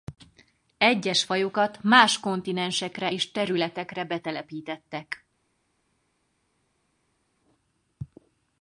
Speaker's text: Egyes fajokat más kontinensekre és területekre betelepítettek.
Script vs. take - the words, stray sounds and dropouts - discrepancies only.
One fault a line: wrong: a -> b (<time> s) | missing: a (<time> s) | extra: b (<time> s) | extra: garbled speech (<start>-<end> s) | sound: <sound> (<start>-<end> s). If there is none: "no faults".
no faults